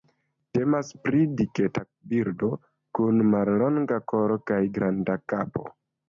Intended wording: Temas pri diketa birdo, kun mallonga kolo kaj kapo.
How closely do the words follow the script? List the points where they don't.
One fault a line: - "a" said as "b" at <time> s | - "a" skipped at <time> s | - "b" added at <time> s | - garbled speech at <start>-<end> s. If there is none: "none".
- "granda" added at 4.8 s